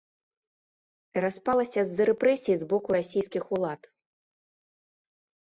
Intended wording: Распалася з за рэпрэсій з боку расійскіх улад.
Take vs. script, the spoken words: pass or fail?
pass